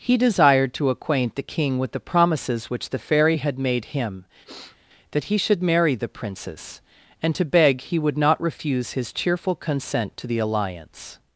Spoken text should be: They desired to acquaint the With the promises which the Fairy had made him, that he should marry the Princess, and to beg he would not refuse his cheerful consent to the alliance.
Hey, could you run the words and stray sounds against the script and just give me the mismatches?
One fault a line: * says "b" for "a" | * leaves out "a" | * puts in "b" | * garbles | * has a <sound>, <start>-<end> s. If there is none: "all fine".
* says "He" for "They"
* puts in "King"
* has a sniff, 4.5-4.8 s